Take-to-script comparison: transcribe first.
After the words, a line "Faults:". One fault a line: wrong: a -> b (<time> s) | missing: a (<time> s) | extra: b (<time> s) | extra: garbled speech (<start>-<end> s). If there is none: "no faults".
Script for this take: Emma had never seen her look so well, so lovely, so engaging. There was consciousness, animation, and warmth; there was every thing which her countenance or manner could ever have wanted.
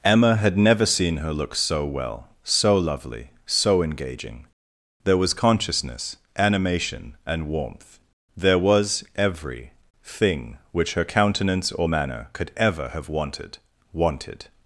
Emma had never seen her look so well, so lovely, so engaging. There was consciousness, animation, and warmth; there was every thing which her countenance or manner could ever have wanted wanted.
Faults:
extra: wanted (13.9 s)